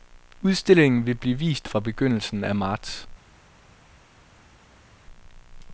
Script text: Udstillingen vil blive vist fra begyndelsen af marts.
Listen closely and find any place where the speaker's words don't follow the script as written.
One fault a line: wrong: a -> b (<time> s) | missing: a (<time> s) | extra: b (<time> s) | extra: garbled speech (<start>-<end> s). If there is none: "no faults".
no faults